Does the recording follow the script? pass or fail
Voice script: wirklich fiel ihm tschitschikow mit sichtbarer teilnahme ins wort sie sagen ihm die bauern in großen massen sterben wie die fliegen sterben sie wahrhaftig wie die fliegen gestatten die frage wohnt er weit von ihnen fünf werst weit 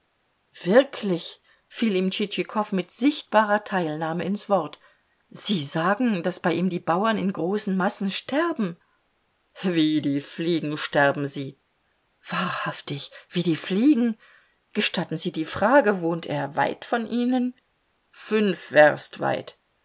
fail